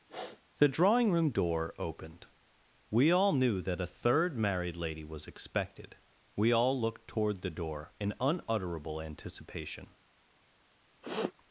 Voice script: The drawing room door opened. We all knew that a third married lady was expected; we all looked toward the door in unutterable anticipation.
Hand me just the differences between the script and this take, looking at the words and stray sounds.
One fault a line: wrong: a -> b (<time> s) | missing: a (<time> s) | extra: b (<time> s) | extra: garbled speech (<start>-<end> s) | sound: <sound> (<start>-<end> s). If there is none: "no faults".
sound: sniff (0.1-0.4 s)
sound: sniff (11.0-11.3 s)